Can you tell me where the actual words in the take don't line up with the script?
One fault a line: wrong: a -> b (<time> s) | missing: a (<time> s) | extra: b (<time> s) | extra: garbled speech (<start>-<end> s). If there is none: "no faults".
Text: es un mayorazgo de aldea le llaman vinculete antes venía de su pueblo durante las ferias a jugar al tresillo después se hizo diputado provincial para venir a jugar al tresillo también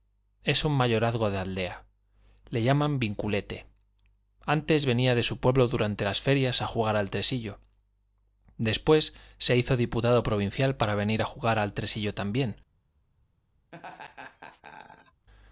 no faults